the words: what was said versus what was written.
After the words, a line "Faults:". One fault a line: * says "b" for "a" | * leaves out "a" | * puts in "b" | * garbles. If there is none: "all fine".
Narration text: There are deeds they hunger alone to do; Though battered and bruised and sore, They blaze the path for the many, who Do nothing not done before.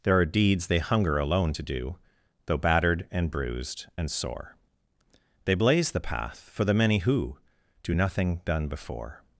There are deeds they hunger alone to do; Though battered and bruised and sore, They blaze the path for the many, who Do nothing done before.
Faults:
* leaves out "not"